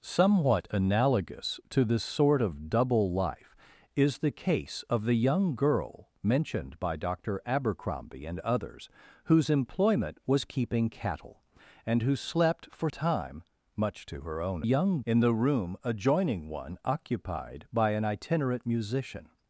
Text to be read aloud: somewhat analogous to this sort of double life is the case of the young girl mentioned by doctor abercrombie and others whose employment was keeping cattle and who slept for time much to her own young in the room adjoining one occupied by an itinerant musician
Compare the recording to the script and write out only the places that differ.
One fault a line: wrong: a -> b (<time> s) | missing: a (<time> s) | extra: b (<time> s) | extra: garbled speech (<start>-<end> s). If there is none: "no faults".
no faults